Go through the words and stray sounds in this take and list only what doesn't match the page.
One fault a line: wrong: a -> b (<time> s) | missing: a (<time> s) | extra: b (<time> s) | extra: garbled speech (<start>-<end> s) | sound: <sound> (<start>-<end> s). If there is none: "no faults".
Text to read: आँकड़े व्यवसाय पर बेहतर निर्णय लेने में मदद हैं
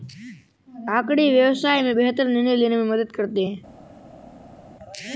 wrong: पर -> में (1.8 s)
extra: करते (3.1 s)